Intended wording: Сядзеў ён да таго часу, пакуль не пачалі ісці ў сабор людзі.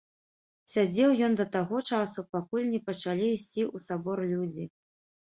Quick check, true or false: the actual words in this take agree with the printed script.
true